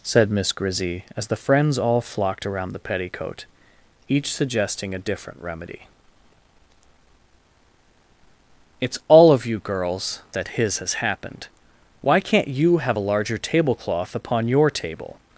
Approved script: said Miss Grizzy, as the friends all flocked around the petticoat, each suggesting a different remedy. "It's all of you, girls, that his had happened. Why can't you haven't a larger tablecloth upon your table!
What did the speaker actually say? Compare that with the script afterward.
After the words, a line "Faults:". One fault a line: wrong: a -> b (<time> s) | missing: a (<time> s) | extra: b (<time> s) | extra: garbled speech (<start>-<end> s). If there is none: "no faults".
said Miss Grizzy, as the friends all flocked around the petticoat, each suggesting a different remedy. "It's all of you, girls, that his has happened. Why can't you have a larger tablecloth upon your table!
Faults:
wrong: had -> has (10.8 s)
wrong: haven't -> have (12.8 s)